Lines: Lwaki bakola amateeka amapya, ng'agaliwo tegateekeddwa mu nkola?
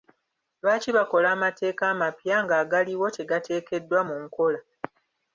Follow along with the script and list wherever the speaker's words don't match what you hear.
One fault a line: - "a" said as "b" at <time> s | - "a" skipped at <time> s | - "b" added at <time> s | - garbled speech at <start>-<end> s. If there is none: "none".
none